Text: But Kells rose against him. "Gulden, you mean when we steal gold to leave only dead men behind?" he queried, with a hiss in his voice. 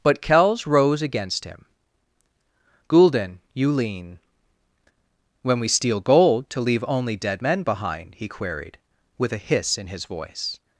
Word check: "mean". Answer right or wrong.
wrong